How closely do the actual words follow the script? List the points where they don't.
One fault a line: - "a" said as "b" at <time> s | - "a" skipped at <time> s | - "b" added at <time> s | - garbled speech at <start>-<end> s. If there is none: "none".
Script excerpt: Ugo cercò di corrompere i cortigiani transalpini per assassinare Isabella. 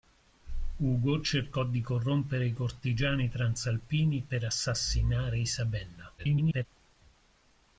- garbled speech at 6.2-6.7 s